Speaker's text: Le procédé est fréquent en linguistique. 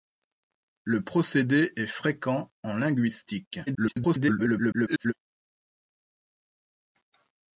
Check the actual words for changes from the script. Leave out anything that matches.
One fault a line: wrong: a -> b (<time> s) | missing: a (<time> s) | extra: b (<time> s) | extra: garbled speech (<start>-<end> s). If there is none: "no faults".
extra: garbled speech (3.7-5.1 s)